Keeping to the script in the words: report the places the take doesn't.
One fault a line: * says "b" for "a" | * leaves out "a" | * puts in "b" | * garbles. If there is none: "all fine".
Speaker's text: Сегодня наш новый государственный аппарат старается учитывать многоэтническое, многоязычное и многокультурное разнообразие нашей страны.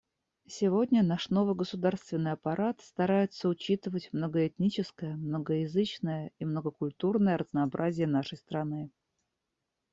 all fine